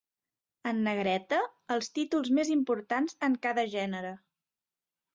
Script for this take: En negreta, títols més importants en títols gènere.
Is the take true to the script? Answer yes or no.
no